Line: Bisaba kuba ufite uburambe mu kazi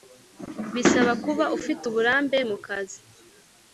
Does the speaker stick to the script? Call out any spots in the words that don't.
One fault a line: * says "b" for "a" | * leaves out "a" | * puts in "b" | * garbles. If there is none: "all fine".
all fine